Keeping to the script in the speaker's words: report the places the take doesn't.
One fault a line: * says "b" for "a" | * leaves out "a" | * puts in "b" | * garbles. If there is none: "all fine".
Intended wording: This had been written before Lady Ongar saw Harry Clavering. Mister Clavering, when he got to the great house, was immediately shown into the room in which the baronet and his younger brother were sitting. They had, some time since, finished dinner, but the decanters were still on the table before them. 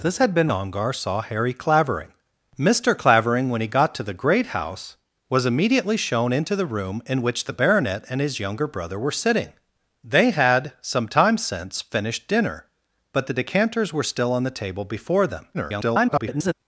* leaves out "written before Lady"
* garbles